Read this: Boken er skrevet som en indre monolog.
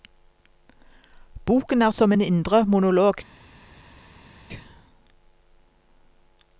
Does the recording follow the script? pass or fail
fail